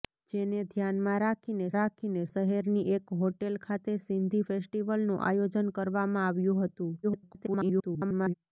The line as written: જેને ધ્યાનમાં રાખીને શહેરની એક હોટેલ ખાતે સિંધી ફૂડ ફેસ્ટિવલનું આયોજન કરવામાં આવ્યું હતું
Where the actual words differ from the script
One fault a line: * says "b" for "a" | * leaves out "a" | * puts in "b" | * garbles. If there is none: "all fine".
* puts in "રાખીને"
* leaves out "ફૂડ"
* garbles